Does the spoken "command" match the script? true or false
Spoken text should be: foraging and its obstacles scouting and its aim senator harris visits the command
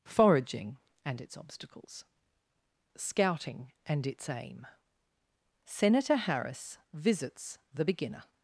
false